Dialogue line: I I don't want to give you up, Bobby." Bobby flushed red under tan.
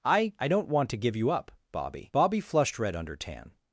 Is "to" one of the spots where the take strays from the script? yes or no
no